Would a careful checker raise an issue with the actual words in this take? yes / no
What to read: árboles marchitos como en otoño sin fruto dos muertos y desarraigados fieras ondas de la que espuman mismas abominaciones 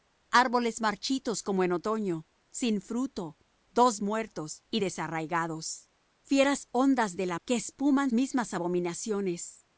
no